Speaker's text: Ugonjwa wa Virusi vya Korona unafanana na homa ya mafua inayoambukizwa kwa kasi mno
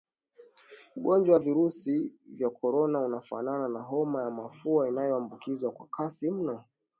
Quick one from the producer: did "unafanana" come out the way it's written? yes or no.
yes